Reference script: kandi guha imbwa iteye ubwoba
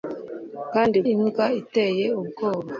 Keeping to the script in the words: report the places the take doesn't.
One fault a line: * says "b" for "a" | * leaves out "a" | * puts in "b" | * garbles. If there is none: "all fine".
* leaves out "guha"